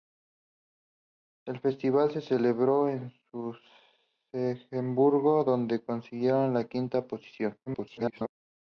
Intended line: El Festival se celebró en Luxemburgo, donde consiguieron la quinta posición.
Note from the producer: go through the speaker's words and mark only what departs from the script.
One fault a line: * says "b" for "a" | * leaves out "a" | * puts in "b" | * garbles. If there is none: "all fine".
* garbles